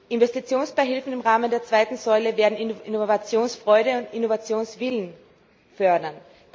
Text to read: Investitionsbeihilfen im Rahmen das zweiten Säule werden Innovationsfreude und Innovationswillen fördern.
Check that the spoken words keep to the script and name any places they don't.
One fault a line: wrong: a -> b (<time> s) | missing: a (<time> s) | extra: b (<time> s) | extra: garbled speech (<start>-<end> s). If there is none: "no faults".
wrong: das -> der (1.5 s)